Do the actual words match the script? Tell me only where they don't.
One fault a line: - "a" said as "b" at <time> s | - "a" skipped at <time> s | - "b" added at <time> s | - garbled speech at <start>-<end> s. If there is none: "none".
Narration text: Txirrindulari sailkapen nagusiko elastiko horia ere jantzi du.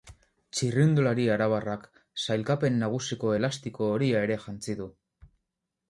- "arabarrak" added at 1.3 s